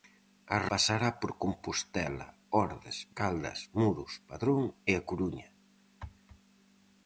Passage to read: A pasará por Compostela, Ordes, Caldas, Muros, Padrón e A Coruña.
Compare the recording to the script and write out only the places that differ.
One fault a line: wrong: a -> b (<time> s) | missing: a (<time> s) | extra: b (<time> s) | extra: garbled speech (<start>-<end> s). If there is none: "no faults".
no faults